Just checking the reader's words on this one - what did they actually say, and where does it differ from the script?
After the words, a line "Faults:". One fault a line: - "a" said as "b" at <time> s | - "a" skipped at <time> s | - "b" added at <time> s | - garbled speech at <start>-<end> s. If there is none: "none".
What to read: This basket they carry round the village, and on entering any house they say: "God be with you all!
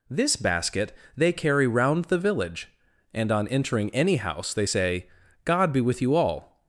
This basket they carry round the village, and on entering any house they say: "God be with you all!
Faults:
none